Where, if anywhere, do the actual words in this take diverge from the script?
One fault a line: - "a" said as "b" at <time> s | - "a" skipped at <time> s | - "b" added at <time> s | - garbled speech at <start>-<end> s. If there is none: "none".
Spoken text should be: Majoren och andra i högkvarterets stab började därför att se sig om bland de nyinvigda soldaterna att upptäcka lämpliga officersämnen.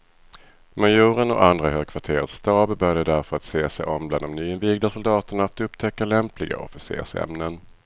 none